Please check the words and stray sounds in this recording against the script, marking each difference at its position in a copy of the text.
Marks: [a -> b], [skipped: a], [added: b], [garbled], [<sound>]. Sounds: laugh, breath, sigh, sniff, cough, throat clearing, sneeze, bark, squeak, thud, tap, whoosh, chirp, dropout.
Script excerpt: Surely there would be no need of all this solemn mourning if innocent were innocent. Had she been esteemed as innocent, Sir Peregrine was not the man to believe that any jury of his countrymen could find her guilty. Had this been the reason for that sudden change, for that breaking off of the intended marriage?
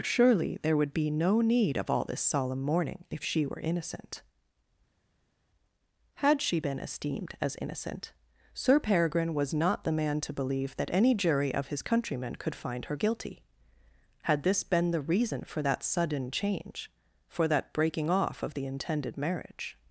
Surely there would be no need of all this solemn mourning if [innocent -> she] were innocent. Had she been esteemed as innocent, Sir Peregrine was not the man to believe that any jury of his countrymen could find her guilty. Had this been the reason for that sudden change, for that breaking off of the intended marriage?